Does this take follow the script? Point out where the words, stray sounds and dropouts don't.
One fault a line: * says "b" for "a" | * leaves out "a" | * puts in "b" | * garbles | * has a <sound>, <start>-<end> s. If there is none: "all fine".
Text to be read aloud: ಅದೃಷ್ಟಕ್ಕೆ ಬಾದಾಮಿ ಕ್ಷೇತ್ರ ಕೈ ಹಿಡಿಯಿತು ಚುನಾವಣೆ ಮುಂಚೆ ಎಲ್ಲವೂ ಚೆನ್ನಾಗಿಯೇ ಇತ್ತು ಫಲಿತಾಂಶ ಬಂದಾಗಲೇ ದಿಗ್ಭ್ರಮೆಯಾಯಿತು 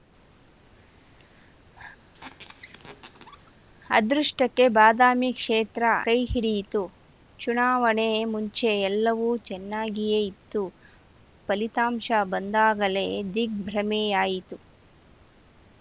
* has a squeak, 2.1-3.5 s